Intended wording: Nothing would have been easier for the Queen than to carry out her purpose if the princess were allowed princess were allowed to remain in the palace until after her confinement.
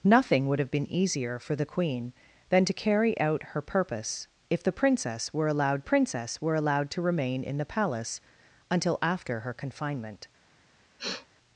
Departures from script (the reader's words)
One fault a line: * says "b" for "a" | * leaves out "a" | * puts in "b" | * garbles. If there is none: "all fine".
all fine